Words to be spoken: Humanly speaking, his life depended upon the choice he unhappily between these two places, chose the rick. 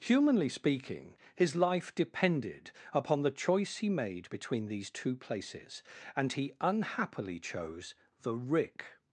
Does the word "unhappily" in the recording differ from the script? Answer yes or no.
yes